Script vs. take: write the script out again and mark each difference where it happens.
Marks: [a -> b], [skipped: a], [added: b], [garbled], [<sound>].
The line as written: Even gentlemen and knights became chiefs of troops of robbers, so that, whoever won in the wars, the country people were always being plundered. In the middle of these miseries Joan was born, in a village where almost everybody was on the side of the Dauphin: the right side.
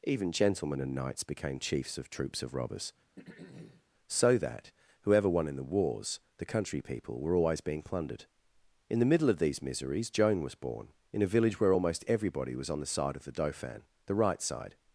Even gentlemen and knights became chiefs of troops of robbers, [throat clearing] so that, whoever won in the wars, the country people were always being plundered. In the middle of these miseries Joan was born, in a village where almost everybody was on the side of the Dauphin: the right side.